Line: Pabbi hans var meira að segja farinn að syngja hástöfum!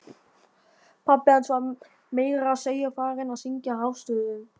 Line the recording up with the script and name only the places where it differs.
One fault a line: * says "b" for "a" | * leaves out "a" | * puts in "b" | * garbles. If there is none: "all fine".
all fine